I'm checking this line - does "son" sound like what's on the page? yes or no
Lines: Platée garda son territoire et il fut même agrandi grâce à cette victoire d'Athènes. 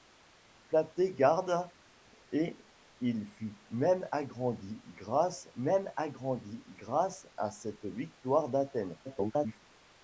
no